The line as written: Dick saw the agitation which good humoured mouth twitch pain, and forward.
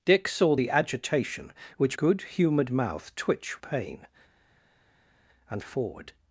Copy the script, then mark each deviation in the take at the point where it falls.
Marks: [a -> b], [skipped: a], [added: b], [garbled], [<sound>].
Dick saw the agitation which good humoured mouth twitch pain, and forward.